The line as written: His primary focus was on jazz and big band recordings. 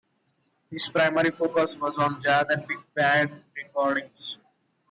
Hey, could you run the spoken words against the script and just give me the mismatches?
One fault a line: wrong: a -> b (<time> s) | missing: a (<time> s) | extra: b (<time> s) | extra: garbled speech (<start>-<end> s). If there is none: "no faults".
no faults